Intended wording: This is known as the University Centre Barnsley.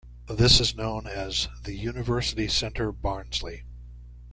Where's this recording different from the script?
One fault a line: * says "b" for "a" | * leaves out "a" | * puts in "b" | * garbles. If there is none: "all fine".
all fine